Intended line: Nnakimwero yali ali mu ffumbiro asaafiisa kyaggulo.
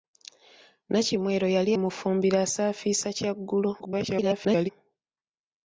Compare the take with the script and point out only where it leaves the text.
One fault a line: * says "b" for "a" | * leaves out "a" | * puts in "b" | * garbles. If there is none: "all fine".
* leaves out "ali"
* garbles